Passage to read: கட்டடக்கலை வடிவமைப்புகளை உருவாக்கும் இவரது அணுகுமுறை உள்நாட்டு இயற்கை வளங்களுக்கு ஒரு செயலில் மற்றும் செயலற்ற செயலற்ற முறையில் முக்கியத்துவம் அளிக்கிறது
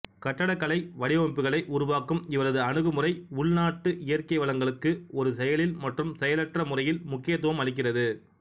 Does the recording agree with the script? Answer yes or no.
no